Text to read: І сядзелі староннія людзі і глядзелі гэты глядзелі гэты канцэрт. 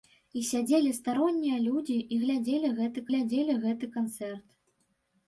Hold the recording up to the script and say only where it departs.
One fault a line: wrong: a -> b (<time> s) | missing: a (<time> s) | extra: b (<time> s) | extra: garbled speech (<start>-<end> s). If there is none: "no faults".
no faults